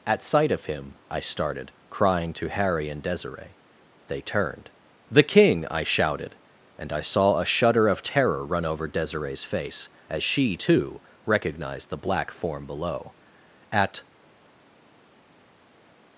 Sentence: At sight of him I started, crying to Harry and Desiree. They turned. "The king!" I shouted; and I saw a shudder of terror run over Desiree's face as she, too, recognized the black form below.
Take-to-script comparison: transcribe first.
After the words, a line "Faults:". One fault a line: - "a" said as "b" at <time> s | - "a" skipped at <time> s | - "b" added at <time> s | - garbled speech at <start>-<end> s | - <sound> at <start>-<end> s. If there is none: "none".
At sight of him I started, crying to Harry and Desiree. They turned. "The king!" I shouted; and I saw a shudder of terror run over Desiree's face as she, too, recognized the black form below. At
Faults:
- "At" added at 13.7 s